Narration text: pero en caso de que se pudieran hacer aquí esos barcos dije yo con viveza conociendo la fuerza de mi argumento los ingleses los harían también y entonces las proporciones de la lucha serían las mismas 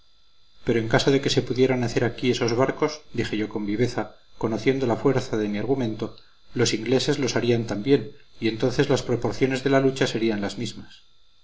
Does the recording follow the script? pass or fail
pass